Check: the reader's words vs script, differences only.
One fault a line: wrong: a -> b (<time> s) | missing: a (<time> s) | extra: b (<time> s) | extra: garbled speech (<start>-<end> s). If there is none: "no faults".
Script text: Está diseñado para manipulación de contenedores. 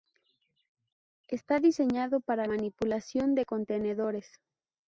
no faults